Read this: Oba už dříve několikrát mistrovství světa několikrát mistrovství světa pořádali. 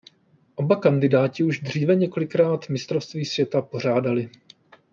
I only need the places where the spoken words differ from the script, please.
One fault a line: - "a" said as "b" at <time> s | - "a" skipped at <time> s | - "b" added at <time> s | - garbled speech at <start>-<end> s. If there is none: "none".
- "kandidáti" added at 0.8 s
- "několikrát mistrovství světa" skipped at 3.6 s